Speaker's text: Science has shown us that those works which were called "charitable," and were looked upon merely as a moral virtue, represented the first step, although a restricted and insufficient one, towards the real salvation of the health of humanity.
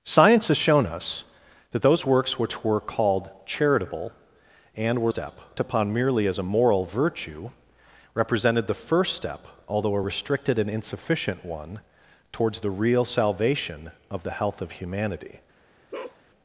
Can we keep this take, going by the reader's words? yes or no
no